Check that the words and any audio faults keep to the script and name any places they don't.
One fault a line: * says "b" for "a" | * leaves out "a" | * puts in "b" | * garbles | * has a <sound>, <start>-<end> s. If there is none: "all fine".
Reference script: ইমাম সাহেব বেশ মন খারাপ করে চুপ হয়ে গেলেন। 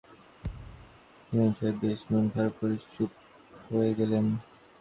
* has a thud, 0.4-1.0 s